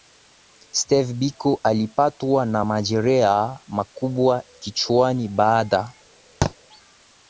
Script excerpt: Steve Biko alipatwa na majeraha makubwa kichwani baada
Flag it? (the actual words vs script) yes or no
no